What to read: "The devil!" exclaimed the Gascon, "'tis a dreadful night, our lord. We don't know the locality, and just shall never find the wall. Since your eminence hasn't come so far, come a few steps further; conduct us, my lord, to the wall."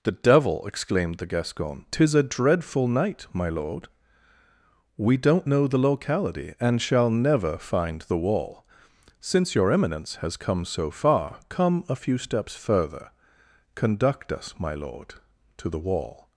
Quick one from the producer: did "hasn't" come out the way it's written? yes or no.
no